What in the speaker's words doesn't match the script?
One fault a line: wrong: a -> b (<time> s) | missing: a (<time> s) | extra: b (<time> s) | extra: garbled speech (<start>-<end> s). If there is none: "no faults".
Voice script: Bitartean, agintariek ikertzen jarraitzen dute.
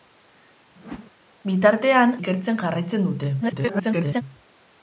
missing: agintariek (2.1 s)
extra: garbled speech (3.4-4.2 s)